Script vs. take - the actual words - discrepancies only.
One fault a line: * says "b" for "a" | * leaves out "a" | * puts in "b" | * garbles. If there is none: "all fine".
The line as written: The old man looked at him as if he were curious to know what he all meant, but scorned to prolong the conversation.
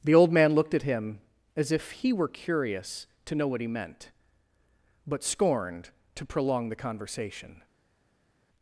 * leaves out "all"